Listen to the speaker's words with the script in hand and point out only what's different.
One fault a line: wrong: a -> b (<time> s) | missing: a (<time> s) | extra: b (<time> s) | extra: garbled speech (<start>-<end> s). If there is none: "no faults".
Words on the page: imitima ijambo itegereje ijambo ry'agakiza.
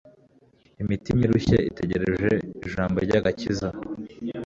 wrong: ijambo -> irushye (1.2 s)